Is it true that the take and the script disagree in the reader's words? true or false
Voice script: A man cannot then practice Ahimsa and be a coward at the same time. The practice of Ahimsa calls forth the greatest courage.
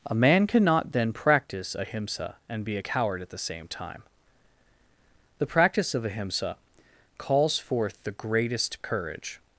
false